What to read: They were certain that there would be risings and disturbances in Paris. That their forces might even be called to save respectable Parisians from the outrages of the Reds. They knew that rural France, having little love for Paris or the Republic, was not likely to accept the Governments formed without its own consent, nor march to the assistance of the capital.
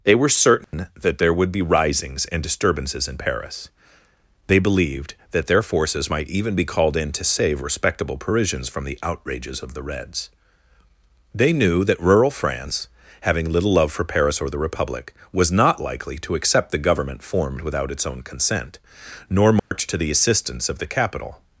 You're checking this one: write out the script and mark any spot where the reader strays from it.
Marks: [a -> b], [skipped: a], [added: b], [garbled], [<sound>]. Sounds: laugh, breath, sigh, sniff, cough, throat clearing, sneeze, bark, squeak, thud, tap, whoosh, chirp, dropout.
They were certain [dropout] that there would be risings and disturbances in Paris. [added: They believed] That their forces might even be called [added: in] to save respectable Parisians from the outrages of the Reds. They knew that rural France, having little love for Paris or the Republic, was not likely to accept the [Governments -> Government] formed without its own consent, nor march [dropout] to the assistance of the capital.